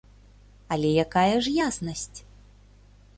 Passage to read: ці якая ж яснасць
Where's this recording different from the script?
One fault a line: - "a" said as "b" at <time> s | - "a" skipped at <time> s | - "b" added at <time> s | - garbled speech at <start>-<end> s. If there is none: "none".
- "ці" said as "але" at 0.8 s